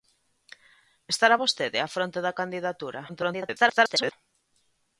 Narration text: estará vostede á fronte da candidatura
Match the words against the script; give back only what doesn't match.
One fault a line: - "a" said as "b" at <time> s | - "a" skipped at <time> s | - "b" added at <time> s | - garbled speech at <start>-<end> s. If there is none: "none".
- garbled speech at 3.1-4.1 s